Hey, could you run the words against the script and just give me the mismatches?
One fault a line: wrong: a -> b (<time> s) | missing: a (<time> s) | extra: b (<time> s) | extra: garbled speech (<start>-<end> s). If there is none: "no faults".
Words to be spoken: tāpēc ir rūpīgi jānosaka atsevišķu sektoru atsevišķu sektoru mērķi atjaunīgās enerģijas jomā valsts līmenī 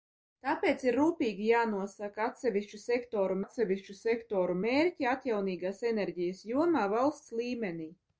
no faults